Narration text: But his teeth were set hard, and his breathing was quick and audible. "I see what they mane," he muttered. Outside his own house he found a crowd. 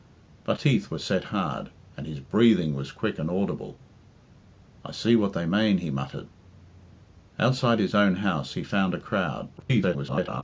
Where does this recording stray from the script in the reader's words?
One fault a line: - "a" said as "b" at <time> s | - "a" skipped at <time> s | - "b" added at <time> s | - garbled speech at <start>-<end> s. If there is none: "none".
- "his" skipped at 0.6 s
- garbled speech at 9.6-10.4 s